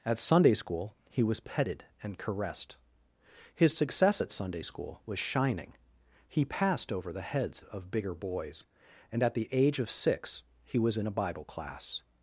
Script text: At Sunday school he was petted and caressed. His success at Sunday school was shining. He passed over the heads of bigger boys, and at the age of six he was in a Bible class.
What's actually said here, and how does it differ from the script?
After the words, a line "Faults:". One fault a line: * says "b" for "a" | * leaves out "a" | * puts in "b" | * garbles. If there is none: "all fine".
At Sunday school he was petted and caressed. His success at Sunday school was shining. He passed over the heads of bigger boys, and at the age of six he was in a Bible class.
Faults:
all fine